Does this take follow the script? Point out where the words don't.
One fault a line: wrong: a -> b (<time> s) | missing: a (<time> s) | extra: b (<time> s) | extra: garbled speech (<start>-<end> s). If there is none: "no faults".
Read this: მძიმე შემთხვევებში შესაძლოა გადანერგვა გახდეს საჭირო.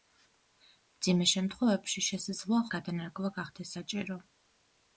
no faults